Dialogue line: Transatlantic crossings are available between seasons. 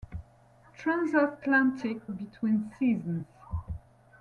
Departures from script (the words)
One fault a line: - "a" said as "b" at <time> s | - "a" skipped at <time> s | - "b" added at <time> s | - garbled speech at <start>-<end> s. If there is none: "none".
- "crossings are available" skipped at 2.0 s